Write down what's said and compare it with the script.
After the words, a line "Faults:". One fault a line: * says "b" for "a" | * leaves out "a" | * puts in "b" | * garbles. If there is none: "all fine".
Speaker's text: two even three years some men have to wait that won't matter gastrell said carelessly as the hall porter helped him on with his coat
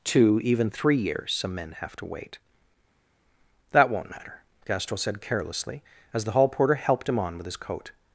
two even three years some men have to wait that won't matter gastrell said carelessly as the hall porter helped him on with his coat
Faults:
all fine